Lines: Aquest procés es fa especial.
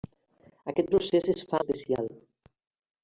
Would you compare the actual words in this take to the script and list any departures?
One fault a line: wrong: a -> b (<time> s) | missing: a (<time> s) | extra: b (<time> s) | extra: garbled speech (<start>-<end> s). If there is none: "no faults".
no faults